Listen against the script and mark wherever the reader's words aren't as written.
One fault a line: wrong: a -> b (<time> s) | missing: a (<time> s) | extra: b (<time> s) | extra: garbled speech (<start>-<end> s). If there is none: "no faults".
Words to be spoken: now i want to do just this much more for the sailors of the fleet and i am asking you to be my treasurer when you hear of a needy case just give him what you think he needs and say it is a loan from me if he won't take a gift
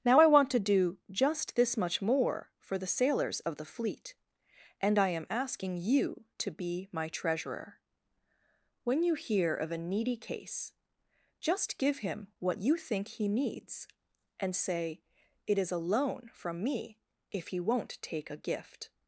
no faults